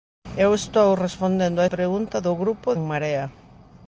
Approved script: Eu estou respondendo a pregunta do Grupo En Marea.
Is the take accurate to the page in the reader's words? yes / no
yes